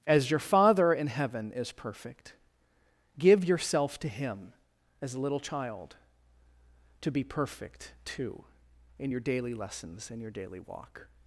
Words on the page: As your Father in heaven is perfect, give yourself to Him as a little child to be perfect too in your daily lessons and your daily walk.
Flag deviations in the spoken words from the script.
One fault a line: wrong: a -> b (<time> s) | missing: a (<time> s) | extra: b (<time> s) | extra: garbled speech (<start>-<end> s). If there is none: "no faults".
no faults